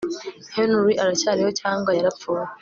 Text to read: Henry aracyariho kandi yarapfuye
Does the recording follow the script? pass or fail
fail